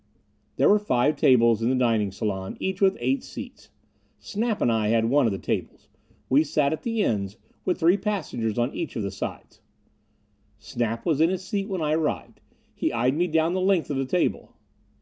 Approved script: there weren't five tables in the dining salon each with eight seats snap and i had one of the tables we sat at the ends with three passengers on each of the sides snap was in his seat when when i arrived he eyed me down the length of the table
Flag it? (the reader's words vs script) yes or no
yes